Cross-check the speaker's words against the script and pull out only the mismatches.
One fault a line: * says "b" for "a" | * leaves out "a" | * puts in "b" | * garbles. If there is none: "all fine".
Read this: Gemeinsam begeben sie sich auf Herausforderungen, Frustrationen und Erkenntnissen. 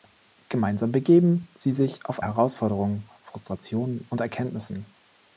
all fine